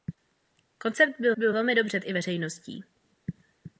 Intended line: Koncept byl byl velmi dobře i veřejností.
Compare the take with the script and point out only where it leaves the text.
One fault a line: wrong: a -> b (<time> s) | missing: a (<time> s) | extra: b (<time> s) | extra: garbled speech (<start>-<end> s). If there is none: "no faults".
no faults